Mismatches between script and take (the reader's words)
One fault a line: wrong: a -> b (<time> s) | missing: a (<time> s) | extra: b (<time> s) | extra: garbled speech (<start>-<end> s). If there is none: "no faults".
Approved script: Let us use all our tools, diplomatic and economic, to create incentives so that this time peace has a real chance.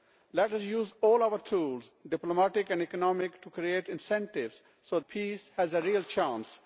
missing: that this time (5.0 s)